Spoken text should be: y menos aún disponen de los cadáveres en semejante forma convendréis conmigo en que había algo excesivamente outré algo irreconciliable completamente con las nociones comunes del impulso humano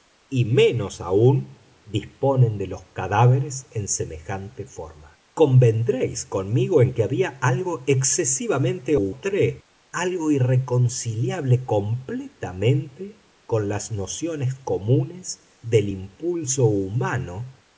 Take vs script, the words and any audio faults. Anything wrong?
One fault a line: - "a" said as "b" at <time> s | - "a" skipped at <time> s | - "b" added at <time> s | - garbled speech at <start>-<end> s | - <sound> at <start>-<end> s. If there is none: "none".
none